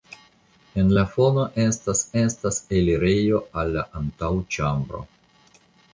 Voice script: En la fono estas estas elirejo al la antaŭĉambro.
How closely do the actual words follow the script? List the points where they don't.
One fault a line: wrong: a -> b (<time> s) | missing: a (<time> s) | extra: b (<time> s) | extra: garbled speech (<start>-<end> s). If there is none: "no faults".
no faults